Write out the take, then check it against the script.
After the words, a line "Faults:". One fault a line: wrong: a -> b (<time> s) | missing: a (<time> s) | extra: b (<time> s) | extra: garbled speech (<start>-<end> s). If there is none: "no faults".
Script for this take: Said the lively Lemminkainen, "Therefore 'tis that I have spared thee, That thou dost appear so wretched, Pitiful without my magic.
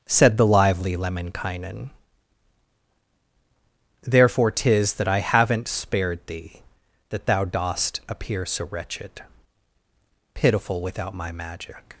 Said the lively Lemminkainen, "Therefore 'tis that I haven't spared thee, That thou dost appear so wretched, Pitiful without my magic.
Faults:
wrong: have -> haven't (5.2 s)